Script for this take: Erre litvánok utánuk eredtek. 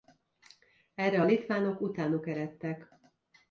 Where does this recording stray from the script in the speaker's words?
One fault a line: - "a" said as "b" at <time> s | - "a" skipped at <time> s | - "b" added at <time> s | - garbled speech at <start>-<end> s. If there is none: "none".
none